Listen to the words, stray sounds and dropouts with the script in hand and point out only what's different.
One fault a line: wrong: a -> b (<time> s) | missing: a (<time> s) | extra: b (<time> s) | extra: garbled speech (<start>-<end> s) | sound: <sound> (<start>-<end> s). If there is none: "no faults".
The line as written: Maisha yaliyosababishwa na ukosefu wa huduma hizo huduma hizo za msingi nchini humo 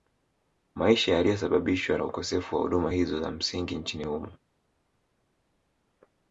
missing: huduma hizo (3.2 s)